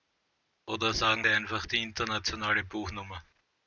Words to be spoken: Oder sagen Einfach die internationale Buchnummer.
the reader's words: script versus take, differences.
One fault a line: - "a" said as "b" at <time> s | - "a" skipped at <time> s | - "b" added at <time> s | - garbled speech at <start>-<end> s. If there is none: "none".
none